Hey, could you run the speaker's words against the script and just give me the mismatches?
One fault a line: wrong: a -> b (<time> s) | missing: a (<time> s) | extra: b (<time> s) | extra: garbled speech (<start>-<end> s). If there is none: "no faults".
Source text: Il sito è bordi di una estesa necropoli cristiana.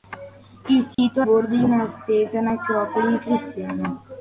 no faults